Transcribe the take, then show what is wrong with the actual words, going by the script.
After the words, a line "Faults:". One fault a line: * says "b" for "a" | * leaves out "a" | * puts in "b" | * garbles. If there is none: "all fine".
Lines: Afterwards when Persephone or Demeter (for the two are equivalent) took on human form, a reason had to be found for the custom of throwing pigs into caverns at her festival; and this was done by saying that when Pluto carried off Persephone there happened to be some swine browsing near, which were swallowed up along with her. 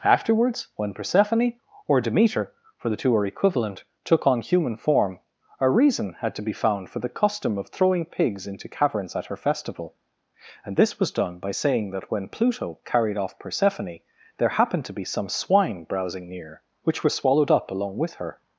Afterwards when Persephone or Demeter (for the two are equivalent) took on human form, a reason had to be found for the custom of throwing pigs into caverns at her festival; and this was done by saying that when Pluto carried off Persephone there happened to be some swine browsing near, which were swallowed up along with her.
Faults:
all fine